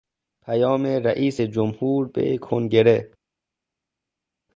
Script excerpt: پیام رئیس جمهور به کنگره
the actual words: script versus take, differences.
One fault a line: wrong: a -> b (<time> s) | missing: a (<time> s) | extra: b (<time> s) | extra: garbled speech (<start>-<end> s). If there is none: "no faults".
no faults